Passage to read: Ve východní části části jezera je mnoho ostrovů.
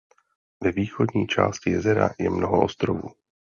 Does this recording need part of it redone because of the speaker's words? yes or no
yes